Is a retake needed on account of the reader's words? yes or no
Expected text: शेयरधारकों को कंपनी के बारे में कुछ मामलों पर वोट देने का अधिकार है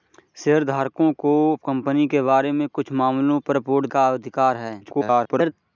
yes